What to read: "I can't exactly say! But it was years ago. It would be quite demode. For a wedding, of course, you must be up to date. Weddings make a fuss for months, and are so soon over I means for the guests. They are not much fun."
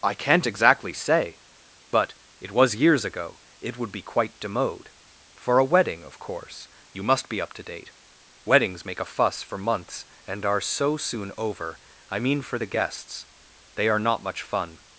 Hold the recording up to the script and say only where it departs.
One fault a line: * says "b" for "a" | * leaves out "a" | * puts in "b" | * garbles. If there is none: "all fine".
* says "mean" for "means"